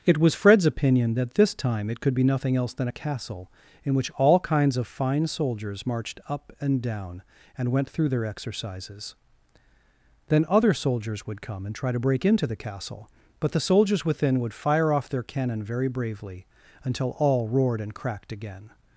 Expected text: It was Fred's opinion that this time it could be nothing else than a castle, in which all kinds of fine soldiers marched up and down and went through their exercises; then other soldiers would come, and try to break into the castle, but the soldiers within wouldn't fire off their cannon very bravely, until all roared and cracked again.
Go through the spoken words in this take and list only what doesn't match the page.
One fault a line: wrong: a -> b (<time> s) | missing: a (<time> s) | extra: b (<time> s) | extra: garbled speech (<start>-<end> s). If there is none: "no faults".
wrong: wouldn't -> would (14.4 s)